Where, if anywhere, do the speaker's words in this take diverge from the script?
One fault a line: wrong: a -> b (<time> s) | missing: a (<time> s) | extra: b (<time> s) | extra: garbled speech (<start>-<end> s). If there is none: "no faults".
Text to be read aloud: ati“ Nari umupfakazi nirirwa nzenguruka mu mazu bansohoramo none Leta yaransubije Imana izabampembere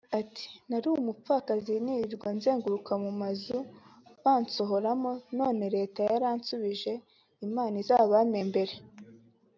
no faults